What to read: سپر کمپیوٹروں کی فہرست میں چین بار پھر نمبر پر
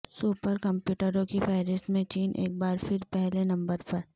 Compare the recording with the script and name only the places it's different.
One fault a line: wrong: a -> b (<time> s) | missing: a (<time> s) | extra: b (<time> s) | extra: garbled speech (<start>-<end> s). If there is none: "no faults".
extra: ایک (2.3 s)
extra: پہلے (3.1 s)